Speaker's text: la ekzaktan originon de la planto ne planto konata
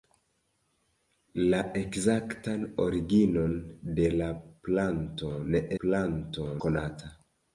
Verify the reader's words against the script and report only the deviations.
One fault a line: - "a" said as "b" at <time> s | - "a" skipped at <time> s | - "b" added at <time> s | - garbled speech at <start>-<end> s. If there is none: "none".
none